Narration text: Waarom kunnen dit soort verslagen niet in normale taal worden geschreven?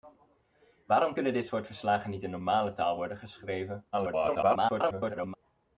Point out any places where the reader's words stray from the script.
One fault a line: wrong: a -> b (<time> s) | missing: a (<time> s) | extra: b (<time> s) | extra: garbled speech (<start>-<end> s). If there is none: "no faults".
extra: garbled speech (3.9-5.3 s)